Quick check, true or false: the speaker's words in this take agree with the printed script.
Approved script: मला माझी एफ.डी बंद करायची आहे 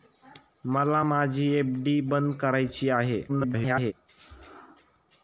false